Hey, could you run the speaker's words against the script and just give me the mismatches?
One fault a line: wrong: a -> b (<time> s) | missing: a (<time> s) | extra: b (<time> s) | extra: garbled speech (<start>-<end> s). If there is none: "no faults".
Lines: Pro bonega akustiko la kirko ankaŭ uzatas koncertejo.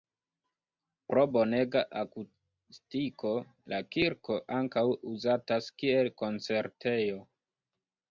extra: kiel (5.8 s)